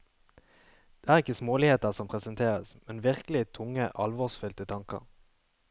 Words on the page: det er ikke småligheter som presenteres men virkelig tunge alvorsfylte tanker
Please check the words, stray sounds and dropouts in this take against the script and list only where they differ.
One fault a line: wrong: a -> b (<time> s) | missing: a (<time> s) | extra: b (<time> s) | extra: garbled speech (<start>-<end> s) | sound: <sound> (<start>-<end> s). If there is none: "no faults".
no faults